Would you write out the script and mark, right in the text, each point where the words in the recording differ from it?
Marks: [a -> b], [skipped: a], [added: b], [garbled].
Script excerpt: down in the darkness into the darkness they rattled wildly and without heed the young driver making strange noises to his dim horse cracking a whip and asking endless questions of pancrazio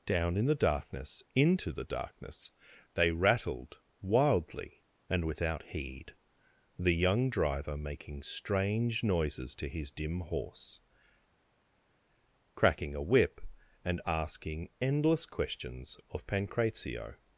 down in the darkness into the darkness they rattled wildly and without heed the young driver making strange noises to his dim horse cracking a whip and asking endless questions of pancrazio